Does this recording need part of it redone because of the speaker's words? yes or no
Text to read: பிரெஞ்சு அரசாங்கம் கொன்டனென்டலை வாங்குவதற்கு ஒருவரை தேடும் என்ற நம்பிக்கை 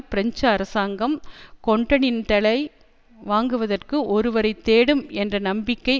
no